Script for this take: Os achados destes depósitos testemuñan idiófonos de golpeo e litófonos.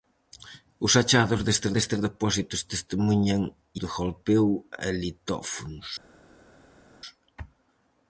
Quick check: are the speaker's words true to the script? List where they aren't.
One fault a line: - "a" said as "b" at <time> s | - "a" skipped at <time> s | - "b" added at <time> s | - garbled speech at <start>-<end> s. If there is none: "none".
- "destes" added at 1.8 s
- "idiófonos" skipped at 3.4 s